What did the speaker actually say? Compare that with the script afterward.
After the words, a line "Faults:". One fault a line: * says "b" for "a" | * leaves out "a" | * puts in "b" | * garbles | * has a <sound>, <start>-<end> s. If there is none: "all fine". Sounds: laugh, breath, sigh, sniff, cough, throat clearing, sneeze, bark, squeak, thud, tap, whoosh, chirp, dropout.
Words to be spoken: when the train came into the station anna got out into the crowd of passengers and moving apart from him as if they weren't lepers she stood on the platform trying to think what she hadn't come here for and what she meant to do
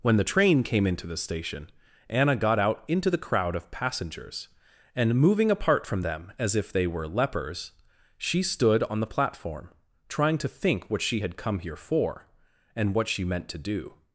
when the train came into the station anna got out into the crowd of passengers and moving apart from them as if they were lepers she stood on the platform trying to think what she had come here for and what she meant to do
Faults:
* says "them" for "him"
* says "were" for "weren't"
* says "had" for "hadn't"